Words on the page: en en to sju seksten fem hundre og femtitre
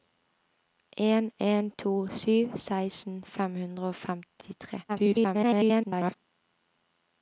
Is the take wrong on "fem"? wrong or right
right